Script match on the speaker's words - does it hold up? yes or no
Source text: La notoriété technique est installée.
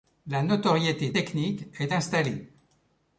yes